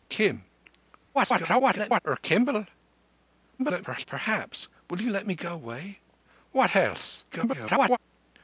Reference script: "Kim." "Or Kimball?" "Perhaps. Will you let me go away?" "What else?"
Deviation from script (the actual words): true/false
true